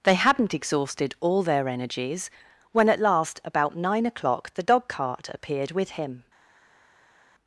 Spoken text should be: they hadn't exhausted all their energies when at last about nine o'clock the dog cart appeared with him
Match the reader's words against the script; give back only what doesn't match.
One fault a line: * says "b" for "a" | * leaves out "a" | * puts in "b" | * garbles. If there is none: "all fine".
all fine